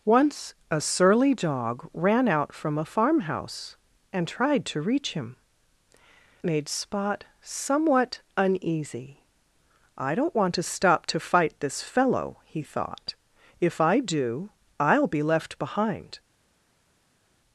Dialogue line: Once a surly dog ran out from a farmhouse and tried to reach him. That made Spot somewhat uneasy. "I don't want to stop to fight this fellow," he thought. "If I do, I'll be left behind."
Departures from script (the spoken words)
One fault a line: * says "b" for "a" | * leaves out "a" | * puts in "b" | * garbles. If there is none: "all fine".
* leaves out "That"